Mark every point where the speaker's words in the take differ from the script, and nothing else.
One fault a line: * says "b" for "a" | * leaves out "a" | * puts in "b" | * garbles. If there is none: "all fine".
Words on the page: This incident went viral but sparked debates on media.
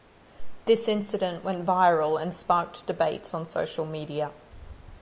* says "and" for "but"
* puts in "social"